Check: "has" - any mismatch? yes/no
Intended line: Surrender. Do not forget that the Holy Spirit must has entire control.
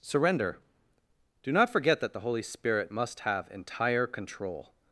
yes